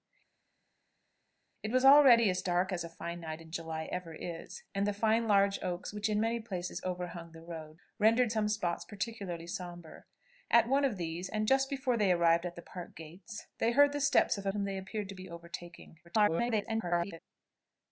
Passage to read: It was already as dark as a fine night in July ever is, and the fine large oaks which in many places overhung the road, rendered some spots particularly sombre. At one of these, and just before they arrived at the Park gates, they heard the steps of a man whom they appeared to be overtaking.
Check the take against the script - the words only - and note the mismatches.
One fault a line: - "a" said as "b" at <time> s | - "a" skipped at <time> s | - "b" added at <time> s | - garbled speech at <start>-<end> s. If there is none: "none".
- "man" skipped at 14.5 s
- garbled speech at 16.0-17.2 s